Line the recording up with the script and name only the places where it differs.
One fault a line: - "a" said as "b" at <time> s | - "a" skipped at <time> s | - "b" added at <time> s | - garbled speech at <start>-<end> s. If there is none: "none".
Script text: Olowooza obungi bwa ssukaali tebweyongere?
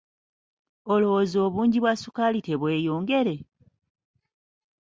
none